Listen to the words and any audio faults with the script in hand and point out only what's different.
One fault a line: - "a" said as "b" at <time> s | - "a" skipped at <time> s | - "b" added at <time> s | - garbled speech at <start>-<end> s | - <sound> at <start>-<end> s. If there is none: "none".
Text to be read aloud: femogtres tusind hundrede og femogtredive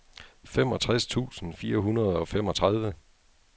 - "fire" added at 1.5 s